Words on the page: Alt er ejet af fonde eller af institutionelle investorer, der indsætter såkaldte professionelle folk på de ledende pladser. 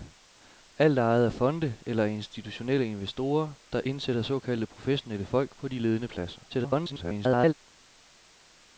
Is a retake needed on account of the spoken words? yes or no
yes